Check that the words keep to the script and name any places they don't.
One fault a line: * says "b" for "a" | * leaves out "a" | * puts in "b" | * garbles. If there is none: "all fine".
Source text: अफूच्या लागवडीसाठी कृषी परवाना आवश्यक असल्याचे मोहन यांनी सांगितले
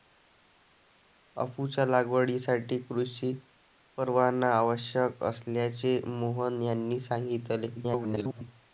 * garbles